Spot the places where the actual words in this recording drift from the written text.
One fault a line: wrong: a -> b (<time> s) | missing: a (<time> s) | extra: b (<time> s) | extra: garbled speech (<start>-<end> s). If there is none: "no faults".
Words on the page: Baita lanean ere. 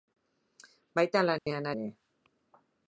no faults